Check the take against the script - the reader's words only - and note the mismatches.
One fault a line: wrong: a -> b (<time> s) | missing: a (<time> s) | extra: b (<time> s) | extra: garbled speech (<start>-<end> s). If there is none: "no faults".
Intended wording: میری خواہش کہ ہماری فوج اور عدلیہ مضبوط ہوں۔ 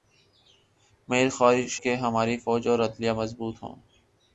no faults